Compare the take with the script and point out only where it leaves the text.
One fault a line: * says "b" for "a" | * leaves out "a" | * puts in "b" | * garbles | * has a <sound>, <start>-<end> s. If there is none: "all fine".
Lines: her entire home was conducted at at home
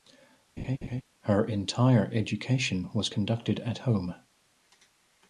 * has a laugh, 0.6-1.0 s
* says "education" for "home"
* leaves out "at"